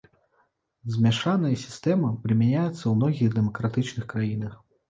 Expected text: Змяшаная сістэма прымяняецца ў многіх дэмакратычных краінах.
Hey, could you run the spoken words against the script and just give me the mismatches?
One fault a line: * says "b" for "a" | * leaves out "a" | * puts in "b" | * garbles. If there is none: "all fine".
all fine